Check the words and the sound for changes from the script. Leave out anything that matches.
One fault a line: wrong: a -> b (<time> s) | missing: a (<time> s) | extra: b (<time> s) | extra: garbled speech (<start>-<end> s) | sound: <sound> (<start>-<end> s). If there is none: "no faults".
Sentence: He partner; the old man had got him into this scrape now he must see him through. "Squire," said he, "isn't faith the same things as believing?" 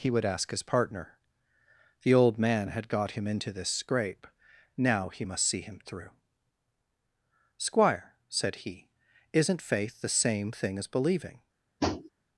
extra: would ask his (0.1 s)
wrong: things -> thing (10.5 s)
sound: tap (11.8-12.1 s)